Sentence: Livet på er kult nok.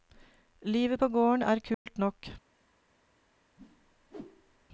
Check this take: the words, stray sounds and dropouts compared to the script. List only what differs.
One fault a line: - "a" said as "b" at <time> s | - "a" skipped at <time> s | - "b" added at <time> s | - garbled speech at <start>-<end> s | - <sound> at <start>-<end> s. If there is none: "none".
- "gården" added at 1.1 s
- dropout at 1.7-1.9 s
- whoosh at 3.6-4.7 s